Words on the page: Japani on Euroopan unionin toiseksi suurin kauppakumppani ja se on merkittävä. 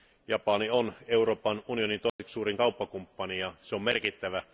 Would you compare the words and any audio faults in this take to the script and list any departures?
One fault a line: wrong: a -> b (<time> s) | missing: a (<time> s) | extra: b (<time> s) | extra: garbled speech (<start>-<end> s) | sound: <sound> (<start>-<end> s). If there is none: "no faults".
sound: dropout (2.1-2.2 s)